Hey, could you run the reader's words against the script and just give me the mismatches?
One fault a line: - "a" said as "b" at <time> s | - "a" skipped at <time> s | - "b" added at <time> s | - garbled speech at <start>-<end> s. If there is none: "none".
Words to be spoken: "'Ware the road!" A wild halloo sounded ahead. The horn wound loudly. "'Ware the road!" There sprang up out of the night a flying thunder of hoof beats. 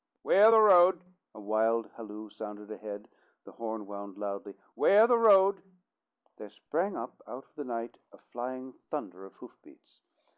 none